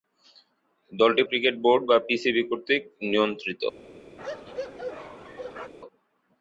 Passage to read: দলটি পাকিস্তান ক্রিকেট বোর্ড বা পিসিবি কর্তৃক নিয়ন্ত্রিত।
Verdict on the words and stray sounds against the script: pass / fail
fail